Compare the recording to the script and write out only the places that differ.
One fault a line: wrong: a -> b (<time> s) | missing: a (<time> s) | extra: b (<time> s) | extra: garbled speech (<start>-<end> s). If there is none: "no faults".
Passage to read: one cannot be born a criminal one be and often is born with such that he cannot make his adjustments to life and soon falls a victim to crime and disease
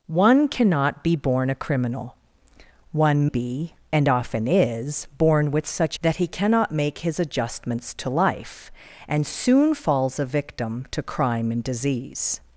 no faults